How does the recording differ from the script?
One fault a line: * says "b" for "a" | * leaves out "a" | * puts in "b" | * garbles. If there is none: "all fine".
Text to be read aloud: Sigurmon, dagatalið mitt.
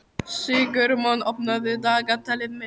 * puts in "opnaðu"